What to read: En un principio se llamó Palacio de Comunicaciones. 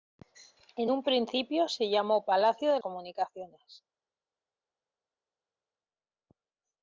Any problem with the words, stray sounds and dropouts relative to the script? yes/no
no